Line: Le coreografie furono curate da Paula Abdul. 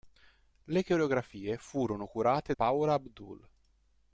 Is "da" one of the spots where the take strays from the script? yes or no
yes